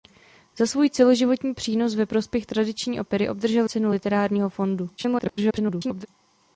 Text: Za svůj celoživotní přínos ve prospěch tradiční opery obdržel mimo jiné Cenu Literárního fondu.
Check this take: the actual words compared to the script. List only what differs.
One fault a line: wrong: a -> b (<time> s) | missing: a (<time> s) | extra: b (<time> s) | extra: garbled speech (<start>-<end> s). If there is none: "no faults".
missing: mimo jiné (3.7 s)
extra: garbled speech (5.0-6.1 s)